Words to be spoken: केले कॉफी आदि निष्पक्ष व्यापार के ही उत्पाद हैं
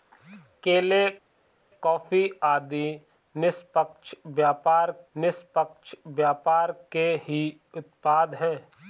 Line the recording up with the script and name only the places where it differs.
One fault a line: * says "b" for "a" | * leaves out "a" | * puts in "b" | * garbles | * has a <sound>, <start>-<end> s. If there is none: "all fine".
* puts in "निष्पक्ष व्यापार"